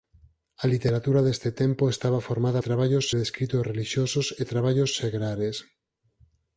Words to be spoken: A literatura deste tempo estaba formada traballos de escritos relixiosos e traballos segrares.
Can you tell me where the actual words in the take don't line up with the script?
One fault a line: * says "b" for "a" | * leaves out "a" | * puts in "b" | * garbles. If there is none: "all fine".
all fine